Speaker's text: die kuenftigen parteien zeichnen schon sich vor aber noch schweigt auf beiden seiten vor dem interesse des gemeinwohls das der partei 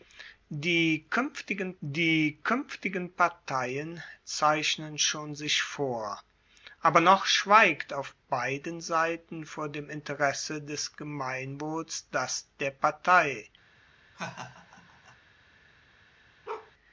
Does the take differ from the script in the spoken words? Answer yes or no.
yes